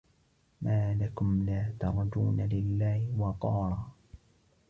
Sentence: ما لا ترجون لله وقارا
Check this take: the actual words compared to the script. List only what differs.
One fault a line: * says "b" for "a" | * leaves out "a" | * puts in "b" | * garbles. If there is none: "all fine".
* puts in "لكم"